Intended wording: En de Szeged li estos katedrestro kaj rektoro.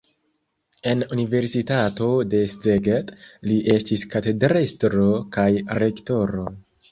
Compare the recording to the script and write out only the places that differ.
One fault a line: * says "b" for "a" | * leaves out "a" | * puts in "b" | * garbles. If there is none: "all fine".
* puts in "universitato"
* says "estis" for "estos"